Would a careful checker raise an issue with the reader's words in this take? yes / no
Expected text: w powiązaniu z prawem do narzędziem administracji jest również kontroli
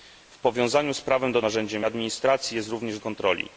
no